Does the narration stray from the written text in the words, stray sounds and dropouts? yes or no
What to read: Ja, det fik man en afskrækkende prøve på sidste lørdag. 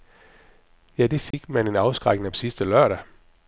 yes